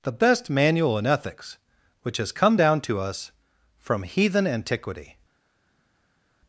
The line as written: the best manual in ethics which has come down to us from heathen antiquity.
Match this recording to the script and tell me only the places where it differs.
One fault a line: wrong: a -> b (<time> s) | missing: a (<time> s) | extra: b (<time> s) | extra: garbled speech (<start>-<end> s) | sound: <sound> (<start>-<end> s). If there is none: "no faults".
no faults